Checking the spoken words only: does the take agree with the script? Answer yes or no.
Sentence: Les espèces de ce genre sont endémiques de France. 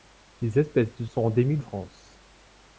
no